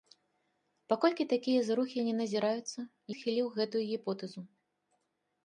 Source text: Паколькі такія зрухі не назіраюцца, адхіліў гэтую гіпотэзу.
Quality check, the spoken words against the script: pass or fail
pass